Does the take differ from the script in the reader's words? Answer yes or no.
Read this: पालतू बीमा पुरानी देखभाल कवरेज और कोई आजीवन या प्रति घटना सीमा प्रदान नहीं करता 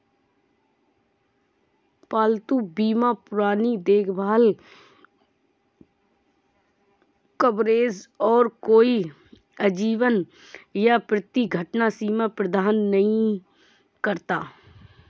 no